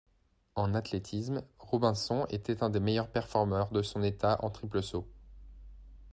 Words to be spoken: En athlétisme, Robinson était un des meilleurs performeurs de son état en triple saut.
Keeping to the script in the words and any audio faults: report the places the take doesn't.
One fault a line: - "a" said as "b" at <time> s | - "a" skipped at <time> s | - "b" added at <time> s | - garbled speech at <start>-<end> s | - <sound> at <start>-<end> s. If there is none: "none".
none